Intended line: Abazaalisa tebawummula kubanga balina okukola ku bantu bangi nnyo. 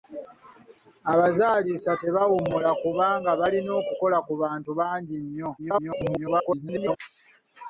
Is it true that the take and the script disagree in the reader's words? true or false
true